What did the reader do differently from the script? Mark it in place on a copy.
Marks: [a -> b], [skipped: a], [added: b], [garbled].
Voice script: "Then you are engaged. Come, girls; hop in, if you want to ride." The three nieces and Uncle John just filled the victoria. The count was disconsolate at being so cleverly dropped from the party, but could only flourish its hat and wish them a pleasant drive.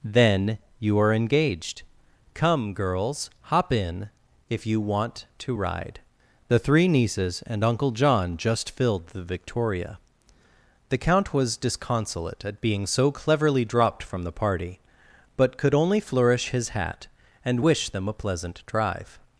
"Then you are engaged. Come, girls; hop in, if you want to ride." The three nieces and Uncle John just filled the victoria. The count was disconsolate at being so cleverly dropped from the party, but could only flourish [its -> his] hat and wish them a pleasant drive.